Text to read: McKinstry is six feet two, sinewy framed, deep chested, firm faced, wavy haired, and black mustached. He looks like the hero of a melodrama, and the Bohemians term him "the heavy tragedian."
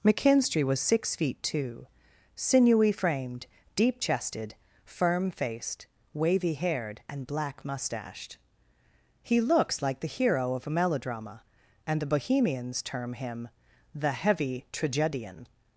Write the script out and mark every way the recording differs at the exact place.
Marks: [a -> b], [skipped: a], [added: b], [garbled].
McKinstry [is -> was] six feet two, sinewy framed, deep chested, firm faced, wavy haired, and black mustached. He looks like the hero of a melodrama, and the Bohemians term him "the heavy tragedian."